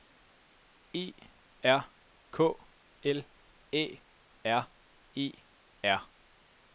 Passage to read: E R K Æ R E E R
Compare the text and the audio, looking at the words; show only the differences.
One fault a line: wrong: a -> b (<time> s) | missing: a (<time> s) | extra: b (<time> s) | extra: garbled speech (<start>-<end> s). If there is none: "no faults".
extra: L (3.0 s)
missing: E (5.3 s)